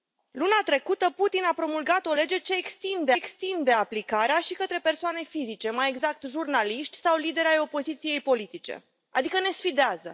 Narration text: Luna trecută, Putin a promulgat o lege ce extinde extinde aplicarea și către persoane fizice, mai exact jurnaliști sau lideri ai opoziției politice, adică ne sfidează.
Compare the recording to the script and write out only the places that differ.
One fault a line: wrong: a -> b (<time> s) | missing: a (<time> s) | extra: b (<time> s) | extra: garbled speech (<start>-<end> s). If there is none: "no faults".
no faults